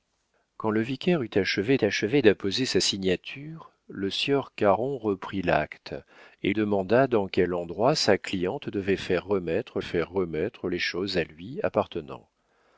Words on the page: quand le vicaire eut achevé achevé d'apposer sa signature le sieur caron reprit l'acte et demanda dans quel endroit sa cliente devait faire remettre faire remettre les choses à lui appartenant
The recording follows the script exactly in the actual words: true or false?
true